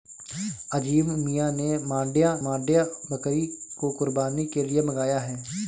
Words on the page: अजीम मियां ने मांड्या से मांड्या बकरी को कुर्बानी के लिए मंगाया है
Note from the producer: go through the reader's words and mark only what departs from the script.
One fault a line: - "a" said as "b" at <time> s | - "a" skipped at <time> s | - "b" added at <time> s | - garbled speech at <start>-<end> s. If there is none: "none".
- "से" skipped at 2.3 s